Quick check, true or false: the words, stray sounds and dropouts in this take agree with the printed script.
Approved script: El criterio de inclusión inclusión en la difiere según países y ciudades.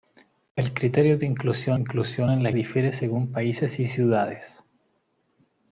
true